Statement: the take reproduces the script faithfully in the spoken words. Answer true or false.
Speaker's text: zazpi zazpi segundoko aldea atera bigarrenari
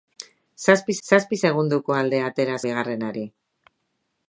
true